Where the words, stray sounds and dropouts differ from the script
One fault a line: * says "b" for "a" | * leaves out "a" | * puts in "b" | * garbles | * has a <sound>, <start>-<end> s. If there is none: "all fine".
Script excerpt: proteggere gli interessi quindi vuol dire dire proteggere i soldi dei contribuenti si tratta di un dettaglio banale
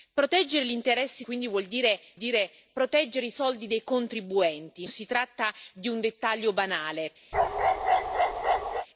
* has a bark, 7.3-8.9 s